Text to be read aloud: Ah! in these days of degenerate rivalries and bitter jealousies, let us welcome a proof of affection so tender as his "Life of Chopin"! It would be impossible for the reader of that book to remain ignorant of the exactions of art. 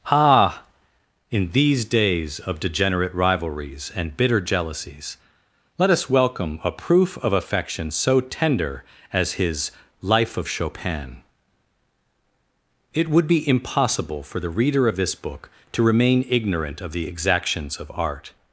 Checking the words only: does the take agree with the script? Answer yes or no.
no